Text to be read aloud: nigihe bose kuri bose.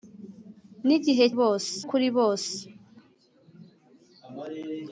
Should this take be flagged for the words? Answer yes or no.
no